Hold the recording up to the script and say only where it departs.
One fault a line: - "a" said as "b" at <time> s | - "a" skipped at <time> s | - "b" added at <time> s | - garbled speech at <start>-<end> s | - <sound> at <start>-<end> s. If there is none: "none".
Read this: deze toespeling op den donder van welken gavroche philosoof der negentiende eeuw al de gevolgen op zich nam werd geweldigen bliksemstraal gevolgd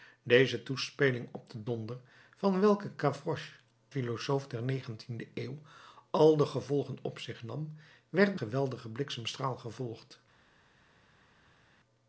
none